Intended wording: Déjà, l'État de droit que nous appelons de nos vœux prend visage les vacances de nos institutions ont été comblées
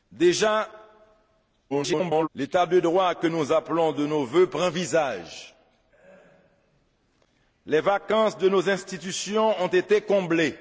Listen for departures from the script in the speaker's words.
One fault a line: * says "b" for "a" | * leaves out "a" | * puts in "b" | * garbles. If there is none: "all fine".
* garbles